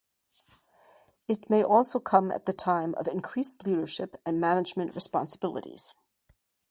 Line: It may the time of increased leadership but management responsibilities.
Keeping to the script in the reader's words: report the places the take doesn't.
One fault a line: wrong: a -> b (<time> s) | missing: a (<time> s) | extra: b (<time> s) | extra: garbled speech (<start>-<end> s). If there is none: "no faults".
extra: also come at (1.6 s)
wrong: but -> and (4.3 s)